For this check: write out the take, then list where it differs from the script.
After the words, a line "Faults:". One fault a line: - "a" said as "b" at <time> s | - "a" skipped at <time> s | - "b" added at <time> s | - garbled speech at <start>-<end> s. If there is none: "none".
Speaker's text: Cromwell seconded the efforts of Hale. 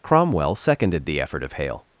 Cromwell seconded the effort of Hale.
Faults:
- "efforts" said as "effort" at 1.2 s